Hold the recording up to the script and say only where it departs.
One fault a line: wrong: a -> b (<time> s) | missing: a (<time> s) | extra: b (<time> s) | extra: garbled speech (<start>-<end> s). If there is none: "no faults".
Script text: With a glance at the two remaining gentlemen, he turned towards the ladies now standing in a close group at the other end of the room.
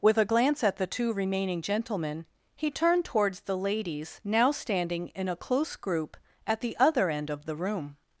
no faults